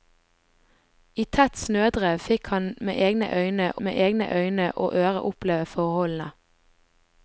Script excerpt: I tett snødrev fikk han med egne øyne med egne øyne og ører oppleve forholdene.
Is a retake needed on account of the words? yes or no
no